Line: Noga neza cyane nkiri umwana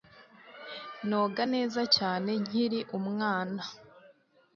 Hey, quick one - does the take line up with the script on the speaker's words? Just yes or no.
yes